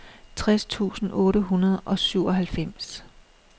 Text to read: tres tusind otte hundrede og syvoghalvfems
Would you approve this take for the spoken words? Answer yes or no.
yes